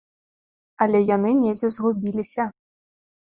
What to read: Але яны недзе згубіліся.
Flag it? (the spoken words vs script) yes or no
no